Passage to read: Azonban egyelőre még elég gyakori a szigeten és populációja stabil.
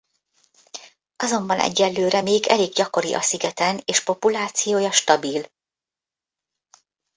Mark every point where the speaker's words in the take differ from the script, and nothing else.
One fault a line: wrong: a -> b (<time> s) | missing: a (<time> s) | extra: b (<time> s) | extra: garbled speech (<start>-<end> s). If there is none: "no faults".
no faults